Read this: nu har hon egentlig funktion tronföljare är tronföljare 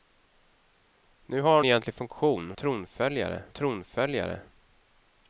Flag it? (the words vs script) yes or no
no